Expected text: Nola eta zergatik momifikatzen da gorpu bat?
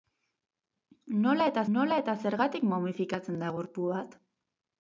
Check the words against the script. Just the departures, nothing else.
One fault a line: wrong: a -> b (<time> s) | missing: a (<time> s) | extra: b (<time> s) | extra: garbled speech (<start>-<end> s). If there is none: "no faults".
extra: nola eta (1.8 s)